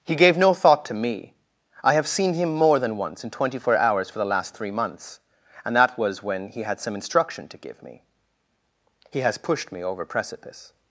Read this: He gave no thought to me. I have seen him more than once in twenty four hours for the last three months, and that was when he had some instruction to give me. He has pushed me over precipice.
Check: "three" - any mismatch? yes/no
no